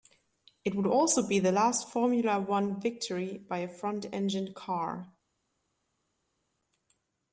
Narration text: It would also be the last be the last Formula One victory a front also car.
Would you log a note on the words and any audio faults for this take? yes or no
yes